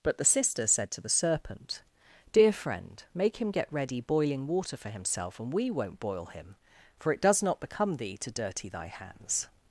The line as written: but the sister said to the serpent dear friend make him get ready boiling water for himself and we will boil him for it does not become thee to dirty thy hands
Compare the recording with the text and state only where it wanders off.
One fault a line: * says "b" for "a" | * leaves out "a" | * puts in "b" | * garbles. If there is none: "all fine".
* says "won't" for "will"